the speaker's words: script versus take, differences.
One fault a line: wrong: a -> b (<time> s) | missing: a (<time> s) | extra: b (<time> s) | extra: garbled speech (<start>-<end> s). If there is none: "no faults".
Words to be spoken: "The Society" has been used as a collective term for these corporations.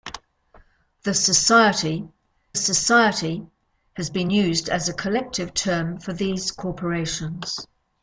extra: Society (2.5 s)